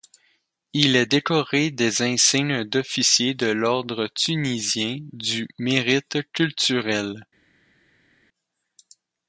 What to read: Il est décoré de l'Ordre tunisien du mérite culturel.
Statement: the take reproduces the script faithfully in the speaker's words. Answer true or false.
false